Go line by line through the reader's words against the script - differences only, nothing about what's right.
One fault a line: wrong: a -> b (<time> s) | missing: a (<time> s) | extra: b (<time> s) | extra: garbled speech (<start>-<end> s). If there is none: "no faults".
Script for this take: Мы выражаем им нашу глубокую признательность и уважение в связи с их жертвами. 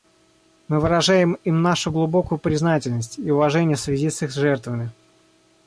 no faults